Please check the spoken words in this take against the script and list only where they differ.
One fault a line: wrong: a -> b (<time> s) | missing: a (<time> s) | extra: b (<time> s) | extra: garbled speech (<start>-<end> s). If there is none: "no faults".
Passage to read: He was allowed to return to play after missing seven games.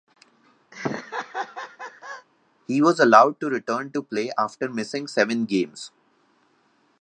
no faults